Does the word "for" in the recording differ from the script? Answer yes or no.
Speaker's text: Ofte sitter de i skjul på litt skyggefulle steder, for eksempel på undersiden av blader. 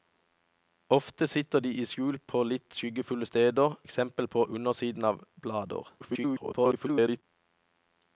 yes